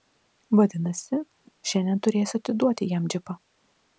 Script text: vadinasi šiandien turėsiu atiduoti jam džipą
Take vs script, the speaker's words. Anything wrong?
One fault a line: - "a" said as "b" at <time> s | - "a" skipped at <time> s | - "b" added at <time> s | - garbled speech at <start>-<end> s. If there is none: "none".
none